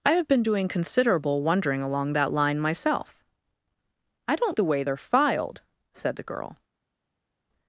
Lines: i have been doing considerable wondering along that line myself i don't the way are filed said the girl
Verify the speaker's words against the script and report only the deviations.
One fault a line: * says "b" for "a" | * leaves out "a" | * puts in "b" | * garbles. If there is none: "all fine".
all fine